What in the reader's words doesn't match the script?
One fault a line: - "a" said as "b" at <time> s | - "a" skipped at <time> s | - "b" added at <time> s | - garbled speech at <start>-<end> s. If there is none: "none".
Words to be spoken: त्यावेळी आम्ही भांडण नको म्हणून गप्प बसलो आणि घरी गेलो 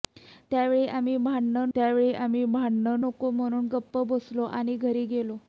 - "त्यावेळी आम्ही भांडण" added at 1.7 s